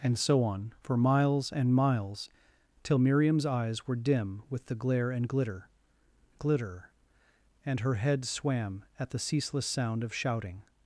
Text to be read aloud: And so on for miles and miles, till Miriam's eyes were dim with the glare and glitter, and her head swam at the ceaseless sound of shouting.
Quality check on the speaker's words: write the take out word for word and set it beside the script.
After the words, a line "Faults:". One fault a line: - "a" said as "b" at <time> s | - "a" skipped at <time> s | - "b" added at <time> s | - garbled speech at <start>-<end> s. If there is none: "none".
And so on for miles and miles, till Miriam's eyes were dim with the glare and glitter glitter, and her head swam at the ceaseless sound of shouting.
Faults:
- "glitter" added at 6.4 s